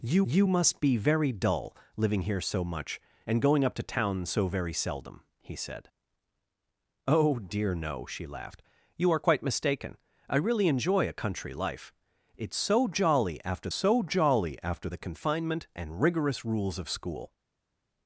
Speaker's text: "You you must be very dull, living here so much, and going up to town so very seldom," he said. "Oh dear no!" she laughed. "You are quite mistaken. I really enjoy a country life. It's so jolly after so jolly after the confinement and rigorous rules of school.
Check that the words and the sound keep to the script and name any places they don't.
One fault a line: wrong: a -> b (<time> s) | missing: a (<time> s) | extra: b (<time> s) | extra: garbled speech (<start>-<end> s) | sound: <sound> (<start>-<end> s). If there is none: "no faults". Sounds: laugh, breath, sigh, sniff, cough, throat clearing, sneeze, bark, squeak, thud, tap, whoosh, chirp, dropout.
no faults